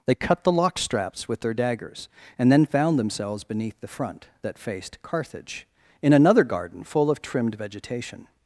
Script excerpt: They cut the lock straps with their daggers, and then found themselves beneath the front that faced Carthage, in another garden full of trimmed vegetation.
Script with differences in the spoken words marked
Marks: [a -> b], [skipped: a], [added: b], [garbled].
They cut the lock straps with their daggers, and then found themselves beneath the front that faced Carthage, in another garden full of trimmed vegetation.